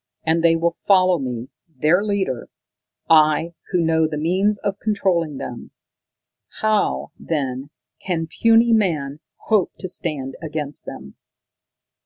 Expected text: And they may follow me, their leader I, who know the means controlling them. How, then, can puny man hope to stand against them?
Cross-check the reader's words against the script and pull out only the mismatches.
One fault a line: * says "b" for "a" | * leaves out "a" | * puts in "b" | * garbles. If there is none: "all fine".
* says "will" for "may"
* puts in "of"